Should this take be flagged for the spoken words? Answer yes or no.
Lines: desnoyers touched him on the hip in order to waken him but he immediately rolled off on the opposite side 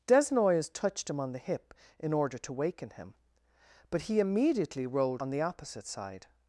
yes